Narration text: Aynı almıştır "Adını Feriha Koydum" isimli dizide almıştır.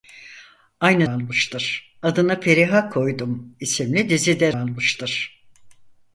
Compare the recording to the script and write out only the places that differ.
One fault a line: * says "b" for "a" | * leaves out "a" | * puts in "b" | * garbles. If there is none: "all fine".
all fine